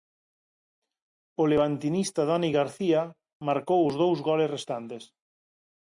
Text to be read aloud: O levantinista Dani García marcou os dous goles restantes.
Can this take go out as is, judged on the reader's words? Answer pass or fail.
pass